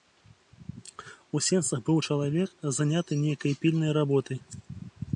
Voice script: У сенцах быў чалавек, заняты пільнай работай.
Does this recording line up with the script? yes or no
no